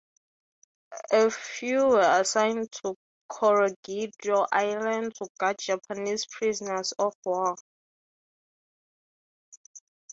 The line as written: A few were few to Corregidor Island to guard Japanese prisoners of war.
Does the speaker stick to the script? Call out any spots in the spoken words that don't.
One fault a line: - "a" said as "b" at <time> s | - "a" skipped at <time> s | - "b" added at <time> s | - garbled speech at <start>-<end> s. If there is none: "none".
- "few" said as "assigned" at 2.2 s